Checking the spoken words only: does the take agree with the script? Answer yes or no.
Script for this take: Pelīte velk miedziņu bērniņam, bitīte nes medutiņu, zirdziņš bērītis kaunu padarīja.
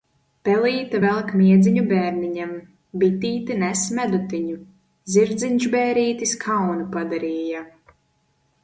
yes